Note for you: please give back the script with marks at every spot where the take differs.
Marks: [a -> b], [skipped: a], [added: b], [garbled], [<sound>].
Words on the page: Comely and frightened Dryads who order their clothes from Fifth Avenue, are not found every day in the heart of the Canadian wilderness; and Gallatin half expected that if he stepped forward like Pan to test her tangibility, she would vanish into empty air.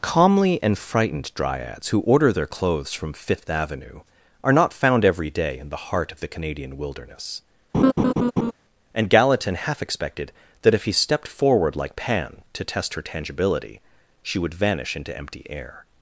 [Comely -> Calmly] and frightened Dryads who order their clothes from Fifth Avenue, are not found every day in the heart of the Canadian wilderness; [laugh] and Gallatin half expected that if he stepped forward like Pan to test her tangibility, she would vanish into empty air.